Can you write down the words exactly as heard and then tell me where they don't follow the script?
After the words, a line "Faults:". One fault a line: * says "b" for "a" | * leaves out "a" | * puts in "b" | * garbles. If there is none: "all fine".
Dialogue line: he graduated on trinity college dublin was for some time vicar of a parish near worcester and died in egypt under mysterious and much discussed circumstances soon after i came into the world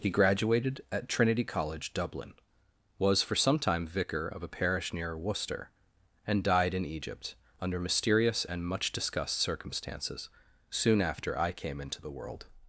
he graduated at trinity college dublin was for some time vicar of a parish near worcester and died in egypt under mysterious and much discussed circumstances soon after i came into the world
Faults:
* says "at" for "on"